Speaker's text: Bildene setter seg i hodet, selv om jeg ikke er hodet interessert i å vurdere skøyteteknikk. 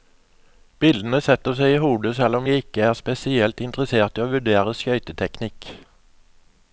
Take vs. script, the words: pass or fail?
fail